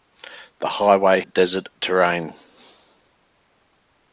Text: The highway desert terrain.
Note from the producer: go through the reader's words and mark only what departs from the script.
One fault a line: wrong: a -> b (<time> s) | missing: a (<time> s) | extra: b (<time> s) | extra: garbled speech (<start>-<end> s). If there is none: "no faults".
no faults